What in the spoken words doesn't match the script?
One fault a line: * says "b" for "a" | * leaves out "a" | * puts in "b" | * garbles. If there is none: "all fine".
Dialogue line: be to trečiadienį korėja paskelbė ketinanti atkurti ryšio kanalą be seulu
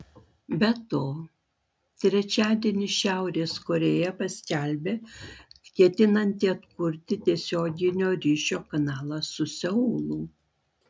* puts in "šiaurės"
* puts in "tiesioginio"
* says "su" for "be"